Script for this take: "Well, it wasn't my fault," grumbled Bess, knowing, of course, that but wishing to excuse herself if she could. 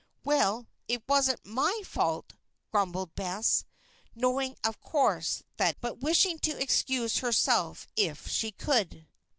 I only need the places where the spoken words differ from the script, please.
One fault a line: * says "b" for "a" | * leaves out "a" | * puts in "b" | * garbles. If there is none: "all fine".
all fine